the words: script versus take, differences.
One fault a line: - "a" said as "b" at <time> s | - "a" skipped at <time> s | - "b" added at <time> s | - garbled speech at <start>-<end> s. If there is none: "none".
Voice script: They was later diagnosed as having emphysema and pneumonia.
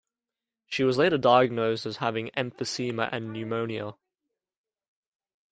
- "They" said as "She" at 0.7 s